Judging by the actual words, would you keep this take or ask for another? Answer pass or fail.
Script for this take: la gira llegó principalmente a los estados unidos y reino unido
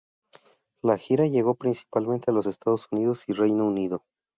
pass